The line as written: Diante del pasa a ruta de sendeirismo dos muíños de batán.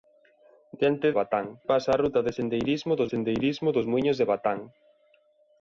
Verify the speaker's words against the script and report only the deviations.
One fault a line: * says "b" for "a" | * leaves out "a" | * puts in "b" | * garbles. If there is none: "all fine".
* says "batán" for "del"
* puts in "sendeirismo dos"